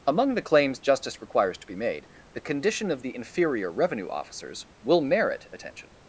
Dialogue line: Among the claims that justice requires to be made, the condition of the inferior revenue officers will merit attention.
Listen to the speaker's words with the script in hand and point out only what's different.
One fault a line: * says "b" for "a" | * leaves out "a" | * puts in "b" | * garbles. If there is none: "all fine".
* leaves out "that"